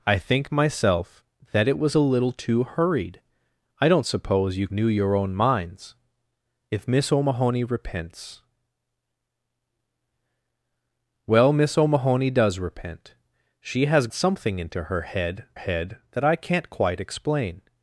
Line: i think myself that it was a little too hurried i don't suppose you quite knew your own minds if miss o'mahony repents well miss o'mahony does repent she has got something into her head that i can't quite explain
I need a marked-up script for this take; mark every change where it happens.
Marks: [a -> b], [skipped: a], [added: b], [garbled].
i think myself that it was a little too hurried i don't suppose you [skipped: quite] knew your own minds if miss o'mahony repents well miss o'mahony does repent she has [skipped: got] something into her head [added: head] that i can't quite explain